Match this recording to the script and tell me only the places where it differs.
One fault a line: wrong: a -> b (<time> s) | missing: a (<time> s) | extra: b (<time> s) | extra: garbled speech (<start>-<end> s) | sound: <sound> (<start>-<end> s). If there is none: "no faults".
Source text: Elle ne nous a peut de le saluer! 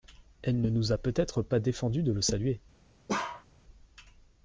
extra: être pas défendu (1.2 s)
sound: bark (3.1-3.5 s)